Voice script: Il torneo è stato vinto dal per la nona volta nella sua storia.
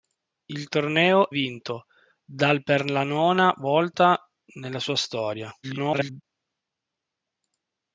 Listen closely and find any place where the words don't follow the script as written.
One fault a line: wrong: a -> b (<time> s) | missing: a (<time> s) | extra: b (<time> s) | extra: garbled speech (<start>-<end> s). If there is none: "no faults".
missing: è stato (1.3 s)
extra: garbled speech (5.6-6.2 s)